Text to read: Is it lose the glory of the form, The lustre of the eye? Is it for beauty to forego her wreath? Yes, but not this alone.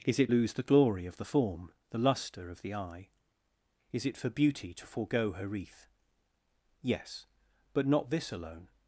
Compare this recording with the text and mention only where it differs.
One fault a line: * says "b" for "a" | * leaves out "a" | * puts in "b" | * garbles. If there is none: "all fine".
all fine